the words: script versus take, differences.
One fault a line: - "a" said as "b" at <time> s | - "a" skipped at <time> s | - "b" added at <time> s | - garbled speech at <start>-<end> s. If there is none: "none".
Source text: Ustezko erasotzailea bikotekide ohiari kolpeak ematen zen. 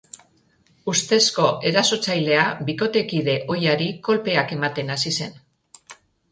- "hasi" added at 5.0 s